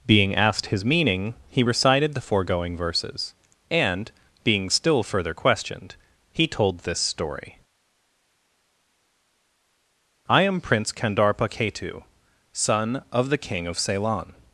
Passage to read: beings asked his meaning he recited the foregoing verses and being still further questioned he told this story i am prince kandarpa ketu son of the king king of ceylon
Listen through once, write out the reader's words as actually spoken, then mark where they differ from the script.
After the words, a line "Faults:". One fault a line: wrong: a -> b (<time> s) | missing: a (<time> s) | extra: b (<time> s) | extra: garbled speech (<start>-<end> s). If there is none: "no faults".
being asked his meaning he recited the foregoing verses and being still further questioned he told this story i am prince kandarpa ketu son of the king of ceylon
Faults:
wrong: beings -> being (0.1 s)
missing: king (13.7 s)